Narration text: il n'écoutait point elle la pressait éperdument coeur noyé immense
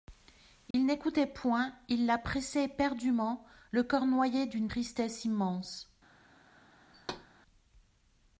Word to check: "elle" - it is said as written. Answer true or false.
false